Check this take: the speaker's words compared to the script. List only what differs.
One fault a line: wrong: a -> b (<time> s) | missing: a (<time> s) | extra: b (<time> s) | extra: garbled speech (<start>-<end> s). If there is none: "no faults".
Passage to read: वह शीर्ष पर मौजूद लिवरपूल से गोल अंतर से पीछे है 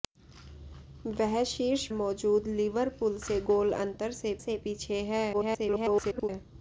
missing: पर (1.9 s)
extra: से (4.4 s)
extra: garbled speech (5.3-6.3 s)